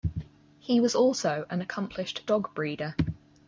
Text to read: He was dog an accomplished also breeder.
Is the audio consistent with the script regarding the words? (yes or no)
no